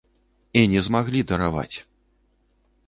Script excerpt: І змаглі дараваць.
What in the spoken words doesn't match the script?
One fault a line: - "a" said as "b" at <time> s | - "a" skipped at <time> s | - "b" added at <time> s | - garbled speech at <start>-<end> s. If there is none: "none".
- "не" added at 0.7 s